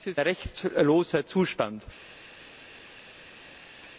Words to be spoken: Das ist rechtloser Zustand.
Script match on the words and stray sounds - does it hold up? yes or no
yes